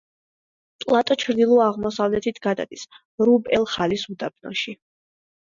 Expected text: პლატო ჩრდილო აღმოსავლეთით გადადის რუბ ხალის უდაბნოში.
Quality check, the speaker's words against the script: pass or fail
fail